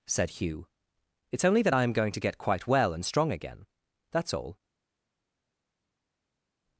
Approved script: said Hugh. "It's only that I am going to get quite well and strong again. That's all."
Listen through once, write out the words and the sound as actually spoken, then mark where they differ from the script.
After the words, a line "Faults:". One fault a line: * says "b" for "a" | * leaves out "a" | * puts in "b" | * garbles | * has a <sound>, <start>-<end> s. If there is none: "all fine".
said Hugh. "It's only that I am going to get quite well and strong again. That's all."
Faults:
all fine